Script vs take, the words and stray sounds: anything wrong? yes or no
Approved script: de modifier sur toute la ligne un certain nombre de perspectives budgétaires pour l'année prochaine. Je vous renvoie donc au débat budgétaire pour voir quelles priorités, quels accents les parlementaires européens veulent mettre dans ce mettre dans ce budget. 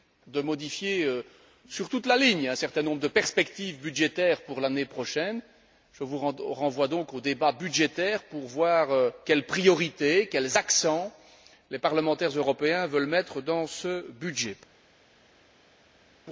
yes